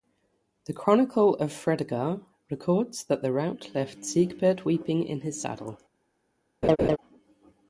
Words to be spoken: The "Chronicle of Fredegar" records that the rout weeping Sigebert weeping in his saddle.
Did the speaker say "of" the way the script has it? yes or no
yes